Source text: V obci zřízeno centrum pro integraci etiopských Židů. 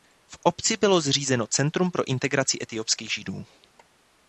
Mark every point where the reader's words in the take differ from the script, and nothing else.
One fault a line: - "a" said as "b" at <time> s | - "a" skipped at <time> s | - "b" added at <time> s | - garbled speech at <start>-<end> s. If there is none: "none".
- "bylo" added at 0.8 s